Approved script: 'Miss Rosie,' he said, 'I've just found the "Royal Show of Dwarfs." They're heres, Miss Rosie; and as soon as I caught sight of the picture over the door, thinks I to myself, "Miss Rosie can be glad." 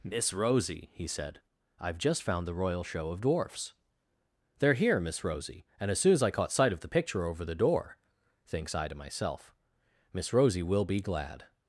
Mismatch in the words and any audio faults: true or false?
true